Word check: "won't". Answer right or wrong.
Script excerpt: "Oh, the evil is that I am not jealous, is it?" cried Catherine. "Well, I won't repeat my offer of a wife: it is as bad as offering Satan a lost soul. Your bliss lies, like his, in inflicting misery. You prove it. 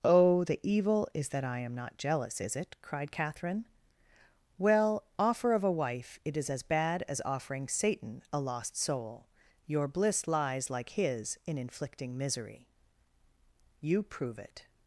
wrong